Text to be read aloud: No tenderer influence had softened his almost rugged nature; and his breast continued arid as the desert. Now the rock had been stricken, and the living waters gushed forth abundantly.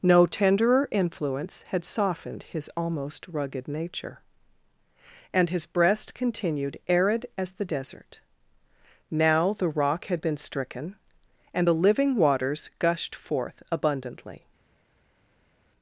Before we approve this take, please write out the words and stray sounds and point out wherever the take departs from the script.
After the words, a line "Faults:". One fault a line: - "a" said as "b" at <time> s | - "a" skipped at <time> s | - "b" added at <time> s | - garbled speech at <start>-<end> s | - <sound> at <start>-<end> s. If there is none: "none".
No tenderer influence had softened his almost rugged nature; and his breast continued arid as the desert. Now the rock had been stricken, and the living waters gushed forth abundantly.
Faults:
none